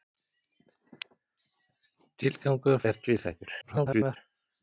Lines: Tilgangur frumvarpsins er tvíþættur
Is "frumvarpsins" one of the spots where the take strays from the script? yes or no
yes